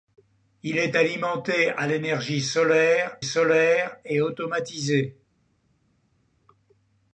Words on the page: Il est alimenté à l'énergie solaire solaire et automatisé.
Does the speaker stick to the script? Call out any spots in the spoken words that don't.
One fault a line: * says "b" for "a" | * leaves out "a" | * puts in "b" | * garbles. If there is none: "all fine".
all fine